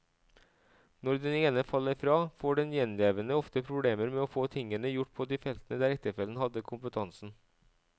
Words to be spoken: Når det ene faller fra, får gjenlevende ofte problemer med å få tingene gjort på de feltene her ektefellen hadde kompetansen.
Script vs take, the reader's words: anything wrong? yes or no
yes